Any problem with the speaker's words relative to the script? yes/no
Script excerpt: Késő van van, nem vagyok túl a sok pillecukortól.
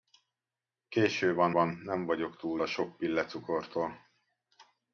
no